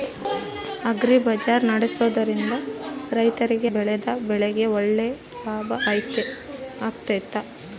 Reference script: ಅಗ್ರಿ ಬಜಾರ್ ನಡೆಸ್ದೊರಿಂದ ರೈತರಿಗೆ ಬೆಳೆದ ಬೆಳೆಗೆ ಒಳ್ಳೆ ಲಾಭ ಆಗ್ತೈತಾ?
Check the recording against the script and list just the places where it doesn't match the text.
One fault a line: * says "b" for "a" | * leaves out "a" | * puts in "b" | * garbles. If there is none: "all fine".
all fine